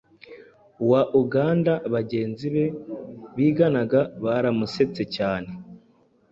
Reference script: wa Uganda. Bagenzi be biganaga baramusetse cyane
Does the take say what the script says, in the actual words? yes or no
yes